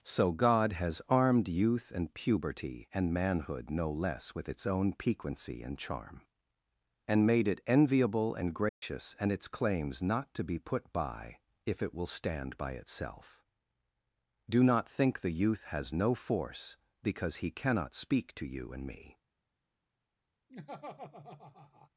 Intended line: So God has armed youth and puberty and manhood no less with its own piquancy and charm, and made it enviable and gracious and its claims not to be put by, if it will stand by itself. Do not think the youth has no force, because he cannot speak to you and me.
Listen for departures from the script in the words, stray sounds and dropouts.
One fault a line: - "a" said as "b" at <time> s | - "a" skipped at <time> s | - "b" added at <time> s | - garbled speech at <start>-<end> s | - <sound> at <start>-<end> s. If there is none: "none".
- dropout at 8.7-8.8 s
- laugh at 20.5-21.9 s